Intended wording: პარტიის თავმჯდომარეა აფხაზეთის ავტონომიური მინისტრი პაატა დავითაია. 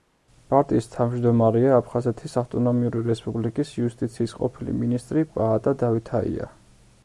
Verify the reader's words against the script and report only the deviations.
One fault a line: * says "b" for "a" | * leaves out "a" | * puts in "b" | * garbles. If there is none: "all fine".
* puts in "რესპუბლიკის იუსტიციის ყოფილი"